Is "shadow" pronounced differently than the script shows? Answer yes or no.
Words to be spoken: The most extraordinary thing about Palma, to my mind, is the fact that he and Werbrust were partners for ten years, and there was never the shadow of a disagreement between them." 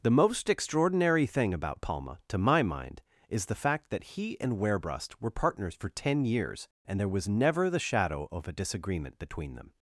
no